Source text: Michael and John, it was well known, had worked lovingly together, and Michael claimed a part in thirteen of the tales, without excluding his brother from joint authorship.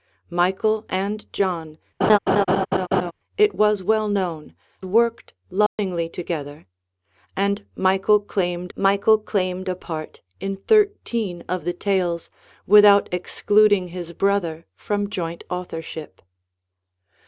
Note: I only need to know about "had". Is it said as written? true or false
false